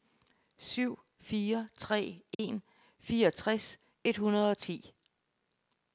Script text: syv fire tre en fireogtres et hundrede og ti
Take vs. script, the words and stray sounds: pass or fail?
fail